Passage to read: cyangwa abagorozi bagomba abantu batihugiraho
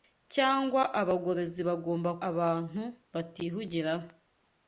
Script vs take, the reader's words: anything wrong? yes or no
no